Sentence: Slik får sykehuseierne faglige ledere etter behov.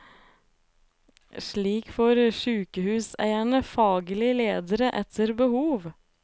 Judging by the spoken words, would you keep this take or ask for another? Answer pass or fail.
pass